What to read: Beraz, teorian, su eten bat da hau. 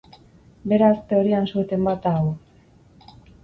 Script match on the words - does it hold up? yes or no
yes